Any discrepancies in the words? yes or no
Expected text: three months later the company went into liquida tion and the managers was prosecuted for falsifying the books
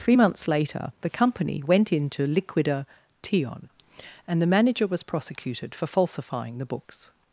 yes